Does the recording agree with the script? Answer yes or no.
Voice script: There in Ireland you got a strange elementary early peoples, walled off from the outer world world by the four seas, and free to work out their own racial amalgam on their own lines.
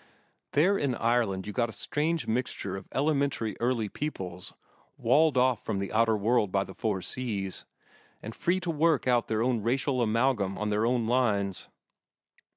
no